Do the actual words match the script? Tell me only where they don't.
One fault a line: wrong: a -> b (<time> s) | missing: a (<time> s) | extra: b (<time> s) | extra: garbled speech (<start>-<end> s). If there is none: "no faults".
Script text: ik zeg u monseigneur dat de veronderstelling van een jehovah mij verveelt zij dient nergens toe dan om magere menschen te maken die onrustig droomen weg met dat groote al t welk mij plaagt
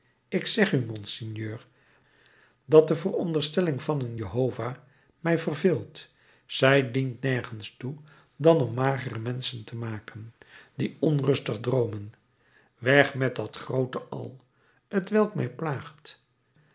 no faults